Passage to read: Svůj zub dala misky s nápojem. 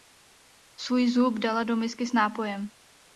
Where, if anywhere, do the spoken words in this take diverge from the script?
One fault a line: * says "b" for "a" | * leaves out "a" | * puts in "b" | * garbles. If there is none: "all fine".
* puts in "do"